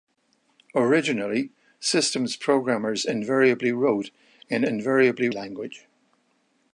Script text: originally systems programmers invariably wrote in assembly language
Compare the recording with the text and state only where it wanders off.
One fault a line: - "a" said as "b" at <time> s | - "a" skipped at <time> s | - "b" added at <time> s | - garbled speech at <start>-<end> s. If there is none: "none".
- "assembly" said as "invariably" at 4.6 s